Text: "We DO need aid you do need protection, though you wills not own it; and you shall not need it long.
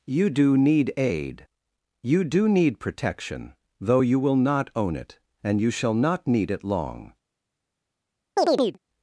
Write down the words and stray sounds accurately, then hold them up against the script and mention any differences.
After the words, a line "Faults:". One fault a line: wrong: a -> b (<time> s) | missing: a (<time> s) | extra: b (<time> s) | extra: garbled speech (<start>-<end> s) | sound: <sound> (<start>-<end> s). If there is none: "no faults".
"You DO need aid you do need protection, though you will not own it; and you shall not need it long.
Faults:
wrong: We -> You (0.1 s)
wrong: wills -> will (4.2 s)
sound: chirp (8.4-8.8 s)